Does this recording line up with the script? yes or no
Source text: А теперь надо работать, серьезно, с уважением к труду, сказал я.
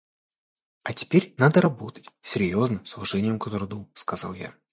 yes